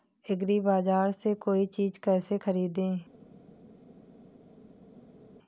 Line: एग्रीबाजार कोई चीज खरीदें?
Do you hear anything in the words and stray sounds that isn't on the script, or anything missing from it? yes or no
yes